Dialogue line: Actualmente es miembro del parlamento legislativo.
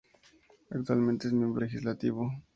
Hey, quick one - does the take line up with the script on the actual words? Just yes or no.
no